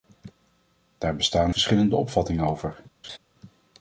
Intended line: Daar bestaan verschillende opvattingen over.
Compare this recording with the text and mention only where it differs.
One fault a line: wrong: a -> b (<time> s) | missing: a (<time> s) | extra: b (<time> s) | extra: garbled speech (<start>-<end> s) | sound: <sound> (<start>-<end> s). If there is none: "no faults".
sound: laugh (3.0-3.2 s)